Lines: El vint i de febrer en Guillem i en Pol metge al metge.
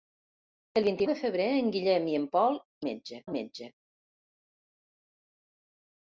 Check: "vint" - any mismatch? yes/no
no